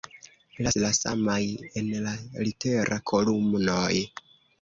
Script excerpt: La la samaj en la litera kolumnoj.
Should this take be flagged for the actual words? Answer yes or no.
no